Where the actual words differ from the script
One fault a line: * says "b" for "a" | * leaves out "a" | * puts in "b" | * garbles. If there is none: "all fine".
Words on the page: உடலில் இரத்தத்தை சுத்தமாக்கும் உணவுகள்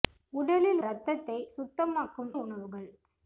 all fine